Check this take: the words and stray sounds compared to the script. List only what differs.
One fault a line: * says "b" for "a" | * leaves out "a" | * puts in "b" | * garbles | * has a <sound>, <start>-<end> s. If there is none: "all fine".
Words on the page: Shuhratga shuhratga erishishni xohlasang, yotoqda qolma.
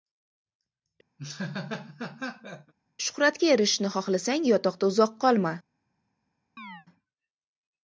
* has a laugh, 1.2-2.7 s
* leaves out "shuhratga"
* puts in "uzoq"
* has a chirp, 6.6-6.9 s